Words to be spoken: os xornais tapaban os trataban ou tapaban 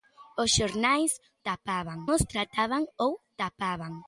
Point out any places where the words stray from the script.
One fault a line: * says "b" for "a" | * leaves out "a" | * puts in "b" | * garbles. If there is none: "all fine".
all fine